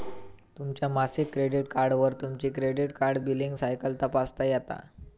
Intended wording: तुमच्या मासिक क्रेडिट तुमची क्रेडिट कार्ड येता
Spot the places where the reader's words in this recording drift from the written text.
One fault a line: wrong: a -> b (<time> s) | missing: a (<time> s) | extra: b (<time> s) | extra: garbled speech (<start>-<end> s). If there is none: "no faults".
extra: कार्डवर (1.7 s)
extra: बिलींग सायकल तपासता (3.2 s)